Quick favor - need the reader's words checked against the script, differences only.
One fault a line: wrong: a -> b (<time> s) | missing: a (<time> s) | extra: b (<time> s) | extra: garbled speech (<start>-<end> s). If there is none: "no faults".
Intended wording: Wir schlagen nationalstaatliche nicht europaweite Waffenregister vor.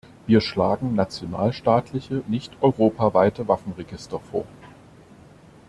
no faults